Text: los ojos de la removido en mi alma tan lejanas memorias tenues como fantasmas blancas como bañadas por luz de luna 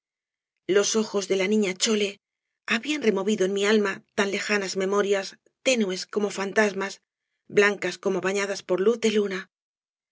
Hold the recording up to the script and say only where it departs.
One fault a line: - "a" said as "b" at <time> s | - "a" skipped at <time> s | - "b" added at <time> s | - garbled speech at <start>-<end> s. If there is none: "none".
- "niña chole habían" added at 1.5 s